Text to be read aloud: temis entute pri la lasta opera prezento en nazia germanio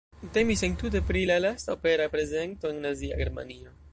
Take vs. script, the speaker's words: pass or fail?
pass